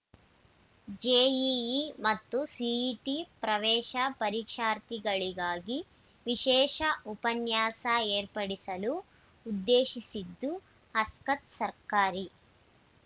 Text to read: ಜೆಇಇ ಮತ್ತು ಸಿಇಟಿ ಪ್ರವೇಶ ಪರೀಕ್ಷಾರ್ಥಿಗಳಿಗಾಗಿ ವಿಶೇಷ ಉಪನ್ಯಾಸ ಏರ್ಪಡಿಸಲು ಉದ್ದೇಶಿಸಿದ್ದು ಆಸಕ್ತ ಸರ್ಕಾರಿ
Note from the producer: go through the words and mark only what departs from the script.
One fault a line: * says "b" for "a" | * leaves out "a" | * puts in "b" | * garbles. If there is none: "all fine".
all fine